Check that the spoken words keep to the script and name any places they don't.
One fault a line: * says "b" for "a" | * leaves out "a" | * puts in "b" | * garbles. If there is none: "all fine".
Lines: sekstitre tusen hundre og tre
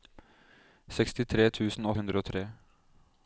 all fine